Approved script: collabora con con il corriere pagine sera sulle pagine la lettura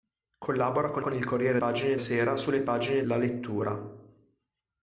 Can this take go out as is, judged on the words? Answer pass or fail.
pass